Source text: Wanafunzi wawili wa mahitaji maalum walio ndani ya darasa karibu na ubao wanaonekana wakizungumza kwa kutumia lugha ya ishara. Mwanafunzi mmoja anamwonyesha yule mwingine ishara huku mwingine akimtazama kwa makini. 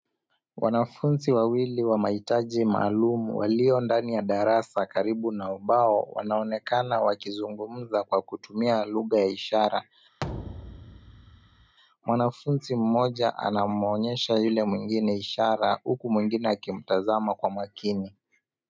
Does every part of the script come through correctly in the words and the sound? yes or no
no